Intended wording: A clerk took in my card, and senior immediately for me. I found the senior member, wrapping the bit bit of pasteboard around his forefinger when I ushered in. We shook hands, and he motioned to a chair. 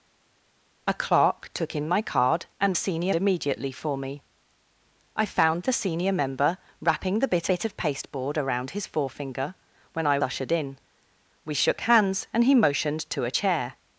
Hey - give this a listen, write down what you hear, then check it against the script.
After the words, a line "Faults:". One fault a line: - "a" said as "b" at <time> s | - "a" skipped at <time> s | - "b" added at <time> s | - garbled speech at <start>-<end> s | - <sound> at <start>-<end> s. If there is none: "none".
A clerk took in my card, and senior immediately for me. I found the senior member, wrapping the bit bit of pasteboard around his forefinger when I ushered in. We shook hands, and he motioned to a chair.
Faults:
none